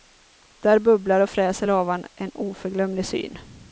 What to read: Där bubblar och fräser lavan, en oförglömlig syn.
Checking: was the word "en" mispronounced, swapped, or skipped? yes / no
no